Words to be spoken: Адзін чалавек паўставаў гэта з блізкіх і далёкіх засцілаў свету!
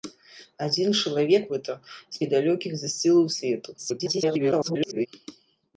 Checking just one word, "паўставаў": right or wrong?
wrong